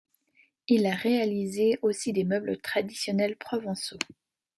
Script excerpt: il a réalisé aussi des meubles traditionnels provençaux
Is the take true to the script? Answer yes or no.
yes